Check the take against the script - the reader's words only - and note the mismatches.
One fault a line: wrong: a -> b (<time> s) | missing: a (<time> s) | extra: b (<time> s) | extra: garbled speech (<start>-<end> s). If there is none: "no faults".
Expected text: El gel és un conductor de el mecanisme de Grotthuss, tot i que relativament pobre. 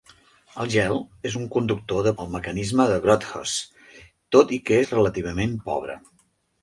no faults